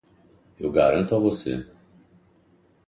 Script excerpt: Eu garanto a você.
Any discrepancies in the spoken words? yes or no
no